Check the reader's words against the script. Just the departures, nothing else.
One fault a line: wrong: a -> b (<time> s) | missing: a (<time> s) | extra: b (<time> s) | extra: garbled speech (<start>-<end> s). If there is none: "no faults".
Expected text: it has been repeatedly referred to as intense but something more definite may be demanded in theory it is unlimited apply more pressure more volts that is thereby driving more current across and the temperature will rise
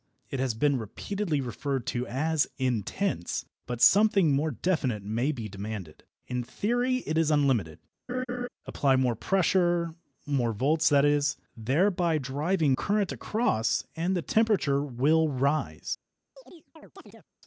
missing: more (12.7 s)